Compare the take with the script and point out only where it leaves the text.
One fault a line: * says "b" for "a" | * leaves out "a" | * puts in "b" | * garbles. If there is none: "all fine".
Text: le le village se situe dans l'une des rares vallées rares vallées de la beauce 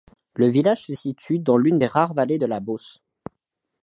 * leaves out "le"
* leaves out "rares vallées"